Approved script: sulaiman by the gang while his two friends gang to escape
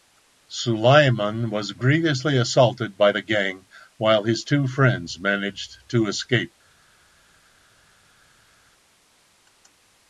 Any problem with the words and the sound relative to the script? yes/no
yes